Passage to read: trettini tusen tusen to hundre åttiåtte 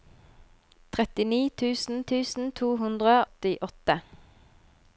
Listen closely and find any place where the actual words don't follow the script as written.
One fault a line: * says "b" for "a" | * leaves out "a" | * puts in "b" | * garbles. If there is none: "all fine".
all fine